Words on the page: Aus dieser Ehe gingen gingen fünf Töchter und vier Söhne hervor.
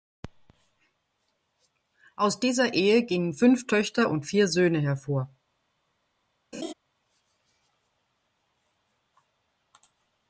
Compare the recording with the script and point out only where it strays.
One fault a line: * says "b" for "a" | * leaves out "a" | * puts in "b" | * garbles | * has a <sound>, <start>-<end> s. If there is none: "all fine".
* leaves out "gingen"
* has a laugh, 6.5-6.7 s